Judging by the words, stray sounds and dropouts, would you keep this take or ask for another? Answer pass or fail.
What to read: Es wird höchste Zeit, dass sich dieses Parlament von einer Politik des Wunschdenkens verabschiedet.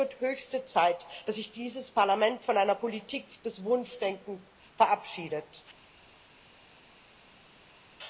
pass